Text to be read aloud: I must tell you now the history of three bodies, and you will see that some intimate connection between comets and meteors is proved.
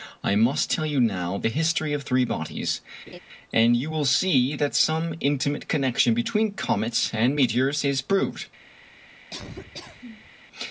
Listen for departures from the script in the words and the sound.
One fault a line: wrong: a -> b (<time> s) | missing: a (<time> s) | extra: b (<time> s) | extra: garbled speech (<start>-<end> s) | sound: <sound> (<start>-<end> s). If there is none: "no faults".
sound: laugh (3.1-3.2 s)
sound: laugh (9.3-10.3 s)